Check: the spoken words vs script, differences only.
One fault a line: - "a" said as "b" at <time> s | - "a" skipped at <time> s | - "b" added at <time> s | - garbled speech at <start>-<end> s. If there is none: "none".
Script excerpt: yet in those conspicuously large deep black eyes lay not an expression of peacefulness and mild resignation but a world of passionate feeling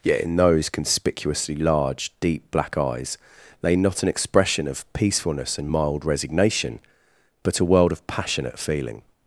none